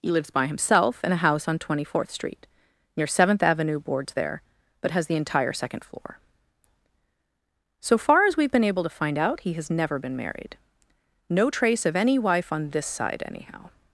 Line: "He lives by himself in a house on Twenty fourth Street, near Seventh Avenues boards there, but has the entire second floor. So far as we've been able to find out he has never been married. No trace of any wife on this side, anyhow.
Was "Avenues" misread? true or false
true